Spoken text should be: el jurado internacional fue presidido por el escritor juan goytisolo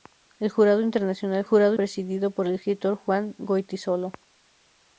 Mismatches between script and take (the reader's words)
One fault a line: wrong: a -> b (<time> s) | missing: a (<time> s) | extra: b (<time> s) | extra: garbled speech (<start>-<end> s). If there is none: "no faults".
wrong: fue -> jurado (1.4 s)